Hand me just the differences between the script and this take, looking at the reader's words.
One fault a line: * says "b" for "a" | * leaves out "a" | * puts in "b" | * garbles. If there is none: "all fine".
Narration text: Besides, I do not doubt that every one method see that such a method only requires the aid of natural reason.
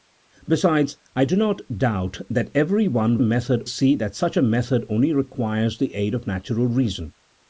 all fine